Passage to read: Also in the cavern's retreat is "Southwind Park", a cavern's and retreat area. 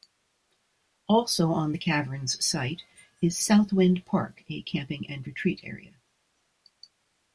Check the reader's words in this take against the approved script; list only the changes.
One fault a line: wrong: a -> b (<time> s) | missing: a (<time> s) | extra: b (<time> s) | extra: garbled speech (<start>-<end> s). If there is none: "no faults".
wrong: in -> on (1.5 s)
wrong: retreat -> site (2.4 s)
wrong: cavern's -> camping (4.6 s)